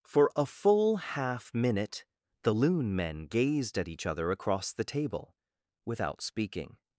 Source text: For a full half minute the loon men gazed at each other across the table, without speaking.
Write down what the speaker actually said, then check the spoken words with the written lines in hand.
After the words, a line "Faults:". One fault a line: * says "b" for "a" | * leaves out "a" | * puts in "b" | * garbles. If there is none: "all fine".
For a full half minute the loon men gazed at each other across the table, without speaking.
Faults:
all fine